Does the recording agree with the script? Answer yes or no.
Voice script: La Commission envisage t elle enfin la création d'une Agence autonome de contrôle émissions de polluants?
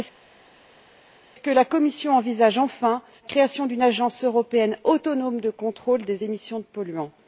no